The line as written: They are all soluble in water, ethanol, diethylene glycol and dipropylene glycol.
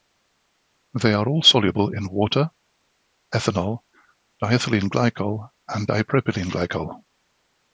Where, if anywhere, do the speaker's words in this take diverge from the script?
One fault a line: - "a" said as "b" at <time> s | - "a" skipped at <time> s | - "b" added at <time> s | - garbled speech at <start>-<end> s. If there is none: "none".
none